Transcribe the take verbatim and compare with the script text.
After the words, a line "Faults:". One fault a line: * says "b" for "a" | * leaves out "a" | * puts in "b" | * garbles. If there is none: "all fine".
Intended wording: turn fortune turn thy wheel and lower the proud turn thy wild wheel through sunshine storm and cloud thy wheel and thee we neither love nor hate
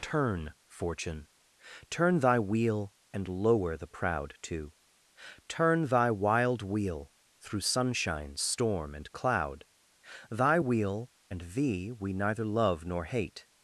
turn fortune turn thy wheel and lower the proud too turn thy wild wheel through sunshine storm and cloud thy wheel and thee we neither love nor hate
Faults:
* puts in "too"